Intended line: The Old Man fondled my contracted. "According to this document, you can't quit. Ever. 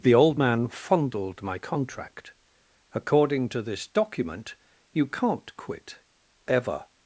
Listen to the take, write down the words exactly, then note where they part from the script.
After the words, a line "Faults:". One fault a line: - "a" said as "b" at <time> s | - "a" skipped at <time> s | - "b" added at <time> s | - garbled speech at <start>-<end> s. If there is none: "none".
The Old Man fondled my contract. "According to this document, you can't quit. Ever.
Faults:
- "contracted" said as "contract" at 1.6 s